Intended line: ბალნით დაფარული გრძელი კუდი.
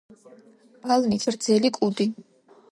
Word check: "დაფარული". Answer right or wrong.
wrong